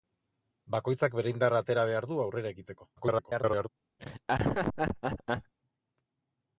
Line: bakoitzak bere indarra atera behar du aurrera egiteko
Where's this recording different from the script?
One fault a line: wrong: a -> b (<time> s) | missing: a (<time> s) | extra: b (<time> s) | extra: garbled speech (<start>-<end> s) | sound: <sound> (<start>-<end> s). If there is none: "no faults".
extra: garbled speech (3.0-3.7 s)
sound: laugh (4.0-5.5 s)